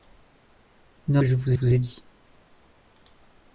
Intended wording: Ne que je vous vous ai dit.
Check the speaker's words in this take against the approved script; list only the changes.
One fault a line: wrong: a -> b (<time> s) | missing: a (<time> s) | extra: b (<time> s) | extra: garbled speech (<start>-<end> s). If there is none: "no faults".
no faults